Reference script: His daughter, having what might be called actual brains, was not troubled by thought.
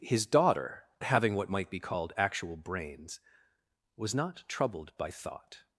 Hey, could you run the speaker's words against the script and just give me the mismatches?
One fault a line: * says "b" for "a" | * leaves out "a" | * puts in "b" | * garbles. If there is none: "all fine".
all fine